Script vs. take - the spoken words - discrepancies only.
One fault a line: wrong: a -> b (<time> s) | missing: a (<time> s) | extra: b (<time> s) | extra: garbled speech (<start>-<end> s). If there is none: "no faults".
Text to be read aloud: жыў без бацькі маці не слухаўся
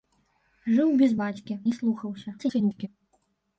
missing: маці (1.6 s)
extra: garbled speech (2.4-2.9 s)